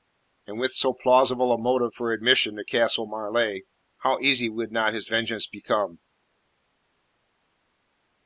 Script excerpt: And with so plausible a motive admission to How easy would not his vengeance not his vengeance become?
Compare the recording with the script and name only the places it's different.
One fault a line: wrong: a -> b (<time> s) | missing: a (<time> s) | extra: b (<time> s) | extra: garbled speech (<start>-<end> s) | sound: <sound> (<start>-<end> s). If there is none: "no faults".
extra: for (1.9 s)
extra: Castle Marleigh (2.6 s)
missing: not his vengeance (5.5 s)